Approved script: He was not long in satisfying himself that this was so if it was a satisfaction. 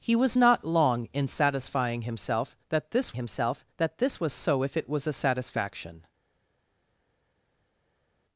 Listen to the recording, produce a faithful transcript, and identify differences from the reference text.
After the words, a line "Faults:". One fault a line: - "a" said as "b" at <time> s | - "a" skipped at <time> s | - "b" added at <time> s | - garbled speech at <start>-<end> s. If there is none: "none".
He was not long in satisfying himself that this himself that this was so if it was a satisfaction.
Faults:
- "himself that this" added at 3.1 s